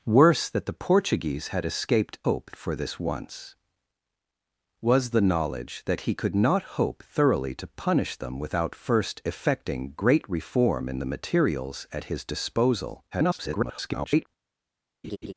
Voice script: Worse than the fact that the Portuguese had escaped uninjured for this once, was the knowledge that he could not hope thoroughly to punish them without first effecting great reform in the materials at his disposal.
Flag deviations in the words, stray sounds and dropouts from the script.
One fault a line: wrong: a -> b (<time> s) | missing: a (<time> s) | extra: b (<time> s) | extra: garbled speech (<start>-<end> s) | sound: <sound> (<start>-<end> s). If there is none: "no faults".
missing: than the fact (0.5 s)
wrong: uninjured -> hope (2.2 s)
extra: garbled speech (13.1-14.3 s)
sound: laugh (15.0-15.3 s)